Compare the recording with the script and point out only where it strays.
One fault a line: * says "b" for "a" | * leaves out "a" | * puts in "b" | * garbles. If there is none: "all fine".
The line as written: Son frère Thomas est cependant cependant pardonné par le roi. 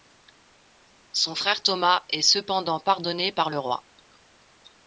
* leaves out "cependant"